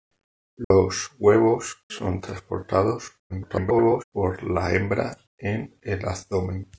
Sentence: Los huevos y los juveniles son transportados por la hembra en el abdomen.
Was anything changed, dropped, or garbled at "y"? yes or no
yes